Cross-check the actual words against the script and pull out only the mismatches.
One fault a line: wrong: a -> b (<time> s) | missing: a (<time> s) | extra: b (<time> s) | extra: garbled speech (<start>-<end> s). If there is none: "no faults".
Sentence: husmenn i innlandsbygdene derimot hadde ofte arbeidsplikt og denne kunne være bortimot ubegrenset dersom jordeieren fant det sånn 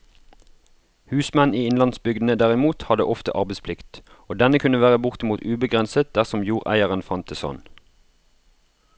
no faults